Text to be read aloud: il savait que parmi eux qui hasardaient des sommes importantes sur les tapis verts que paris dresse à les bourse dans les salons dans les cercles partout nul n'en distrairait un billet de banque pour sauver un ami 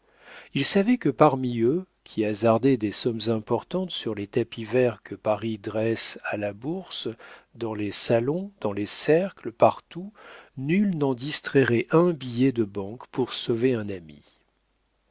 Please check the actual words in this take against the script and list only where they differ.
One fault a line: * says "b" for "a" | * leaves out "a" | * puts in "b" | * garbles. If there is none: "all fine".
* says "la" for "les"